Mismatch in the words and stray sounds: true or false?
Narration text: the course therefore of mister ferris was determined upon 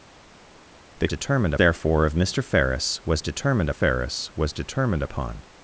true